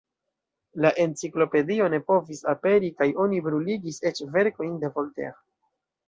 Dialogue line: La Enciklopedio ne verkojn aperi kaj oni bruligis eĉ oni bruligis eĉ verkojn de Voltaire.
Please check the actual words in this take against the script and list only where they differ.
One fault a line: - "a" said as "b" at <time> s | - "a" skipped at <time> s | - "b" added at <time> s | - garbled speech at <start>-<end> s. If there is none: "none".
- "verkojn" said as "povis" at 2.1 s
- "oni bruligis eĉ" skipped at 4.2 s